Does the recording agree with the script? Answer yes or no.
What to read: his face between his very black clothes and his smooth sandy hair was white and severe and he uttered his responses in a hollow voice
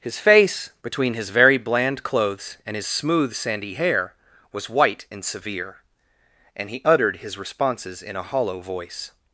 no